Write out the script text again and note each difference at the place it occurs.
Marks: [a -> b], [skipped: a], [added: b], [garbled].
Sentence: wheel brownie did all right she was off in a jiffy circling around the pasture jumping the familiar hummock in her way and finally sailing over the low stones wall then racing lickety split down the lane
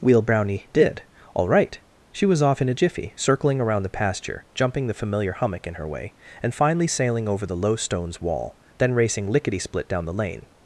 wheel brownie did all right she was off in a jiffy circling around the pasture jumping the familiar hummock in her way and finally sailing over the low stones wall then racing lickety split down the lane